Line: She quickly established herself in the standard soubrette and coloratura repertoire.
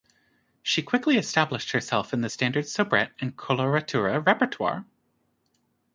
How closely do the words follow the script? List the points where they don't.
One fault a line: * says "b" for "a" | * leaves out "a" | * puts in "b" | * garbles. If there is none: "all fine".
all fine